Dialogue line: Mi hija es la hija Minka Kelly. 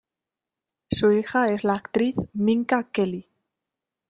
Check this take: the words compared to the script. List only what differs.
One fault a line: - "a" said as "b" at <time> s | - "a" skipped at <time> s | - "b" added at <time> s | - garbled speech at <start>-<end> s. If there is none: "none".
- "Mi" said as "Su" at 0.9 s
- "hija" said as "actriz" at 1.7 s